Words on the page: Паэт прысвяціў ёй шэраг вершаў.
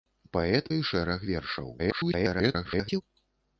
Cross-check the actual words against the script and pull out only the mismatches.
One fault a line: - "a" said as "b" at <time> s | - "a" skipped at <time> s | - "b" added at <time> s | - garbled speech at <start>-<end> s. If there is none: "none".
- "прысвяціў" skipped at 0.7 s
- garbled speech at 1.8-3.0 s